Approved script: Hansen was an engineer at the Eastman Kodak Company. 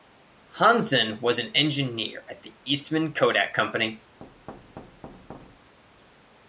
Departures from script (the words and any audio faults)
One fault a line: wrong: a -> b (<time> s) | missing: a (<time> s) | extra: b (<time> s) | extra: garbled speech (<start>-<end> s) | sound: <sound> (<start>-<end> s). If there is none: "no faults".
sound: thud (4.2-5.8 s)